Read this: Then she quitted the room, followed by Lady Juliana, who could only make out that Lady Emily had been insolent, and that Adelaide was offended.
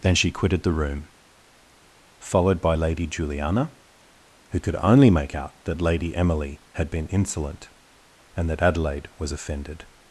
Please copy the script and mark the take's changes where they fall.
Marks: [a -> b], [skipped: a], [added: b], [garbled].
Then she quitted the room, followed by Lady Juliana, who could only make out that Lady Emily had been insolent, and that Adelaide was offended.